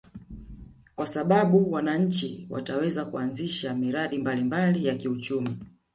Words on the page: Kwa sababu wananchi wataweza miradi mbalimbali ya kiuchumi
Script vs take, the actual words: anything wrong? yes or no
yes